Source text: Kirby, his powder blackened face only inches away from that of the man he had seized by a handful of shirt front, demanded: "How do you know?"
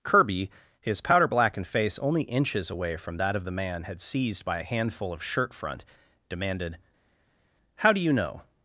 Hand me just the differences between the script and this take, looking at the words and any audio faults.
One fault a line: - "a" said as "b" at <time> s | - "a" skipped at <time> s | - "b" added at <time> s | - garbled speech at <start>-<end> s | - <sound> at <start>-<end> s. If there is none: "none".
- "he" skipped at 3.8 s